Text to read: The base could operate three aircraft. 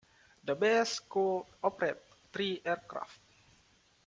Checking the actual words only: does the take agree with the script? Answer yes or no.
yes